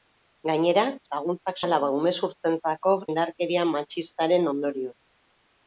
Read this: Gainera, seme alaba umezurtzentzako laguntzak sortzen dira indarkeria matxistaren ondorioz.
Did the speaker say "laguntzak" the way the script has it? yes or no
no